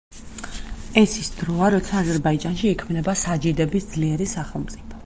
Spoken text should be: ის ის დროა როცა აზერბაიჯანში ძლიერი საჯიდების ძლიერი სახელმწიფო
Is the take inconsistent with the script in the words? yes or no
yes